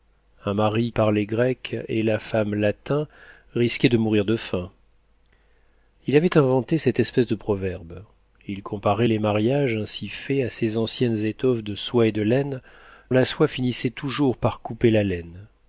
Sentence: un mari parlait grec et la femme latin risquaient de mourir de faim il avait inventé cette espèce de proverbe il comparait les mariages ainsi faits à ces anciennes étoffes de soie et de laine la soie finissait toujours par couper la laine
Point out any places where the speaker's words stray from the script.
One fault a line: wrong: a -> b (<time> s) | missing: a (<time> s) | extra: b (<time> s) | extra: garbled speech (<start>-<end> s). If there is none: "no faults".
no faults